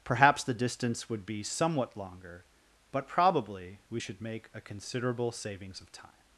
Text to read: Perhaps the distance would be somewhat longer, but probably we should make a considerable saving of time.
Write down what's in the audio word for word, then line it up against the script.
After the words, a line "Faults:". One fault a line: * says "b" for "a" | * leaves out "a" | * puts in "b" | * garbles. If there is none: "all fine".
Perhaps the distance would be somewhat longer, but probably we should make a considerable savings of time.
Faults:
* says "savings" for "saving"